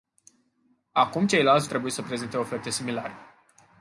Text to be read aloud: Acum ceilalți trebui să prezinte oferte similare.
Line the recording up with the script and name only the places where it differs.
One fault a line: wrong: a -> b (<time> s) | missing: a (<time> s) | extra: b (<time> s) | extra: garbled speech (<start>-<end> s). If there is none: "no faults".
no faults